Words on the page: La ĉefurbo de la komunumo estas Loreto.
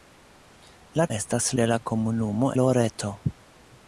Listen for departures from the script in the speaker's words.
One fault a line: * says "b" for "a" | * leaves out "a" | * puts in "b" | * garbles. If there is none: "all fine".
* says "estas" for "ĉefurbo"
* leaves out "estas"